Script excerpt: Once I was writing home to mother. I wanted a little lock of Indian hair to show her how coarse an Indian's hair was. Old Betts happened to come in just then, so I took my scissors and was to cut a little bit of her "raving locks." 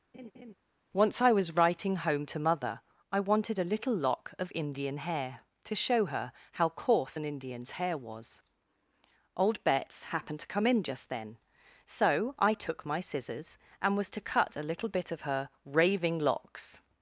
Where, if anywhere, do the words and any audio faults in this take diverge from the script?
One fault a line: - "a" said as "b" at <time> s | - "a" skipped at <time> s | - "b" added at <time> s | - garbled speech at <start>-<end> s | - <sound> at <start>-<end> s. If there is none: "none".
- laugh at 0.1-0.5 s